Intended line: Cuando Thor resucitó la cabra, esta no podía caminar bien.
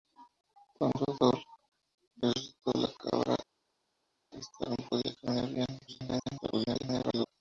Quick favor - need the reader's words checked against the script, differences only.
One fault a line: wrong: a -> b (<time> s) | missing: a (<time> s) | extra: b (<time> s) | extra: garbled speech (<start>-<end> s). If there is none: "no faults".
extra: garbled speech (5.9-7.3 s)